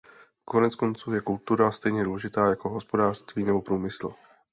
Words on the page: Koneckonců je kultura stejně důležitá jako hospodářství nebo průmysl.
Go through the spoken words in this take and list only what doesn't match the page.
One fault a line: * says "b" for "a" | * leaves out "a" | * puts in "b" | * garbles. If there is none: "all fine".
all fine